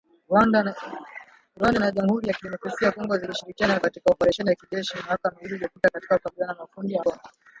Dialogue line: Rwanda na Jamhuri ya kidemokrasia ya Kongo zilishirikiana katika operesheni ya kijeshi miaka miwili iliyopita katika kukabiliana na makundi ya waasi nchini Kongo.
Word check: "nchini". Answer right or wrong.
wrong